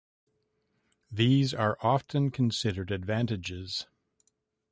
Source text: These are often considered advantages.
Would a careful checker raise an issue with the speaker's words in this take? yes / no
no